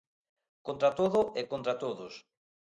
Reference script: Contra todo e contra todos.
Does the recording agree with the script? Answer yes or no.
yes